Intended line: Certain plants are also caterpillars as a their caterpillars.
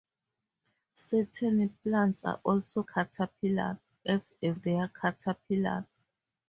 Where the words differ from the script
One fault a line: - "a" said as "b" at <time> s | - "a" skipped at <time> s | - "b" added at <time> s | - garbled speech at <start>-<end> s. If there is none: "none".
none